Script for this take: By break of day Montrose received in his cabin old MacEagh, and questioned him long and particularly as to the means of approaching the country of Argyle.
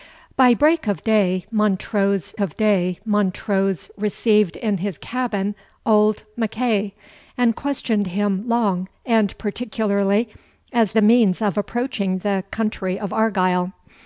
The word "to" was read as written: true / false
false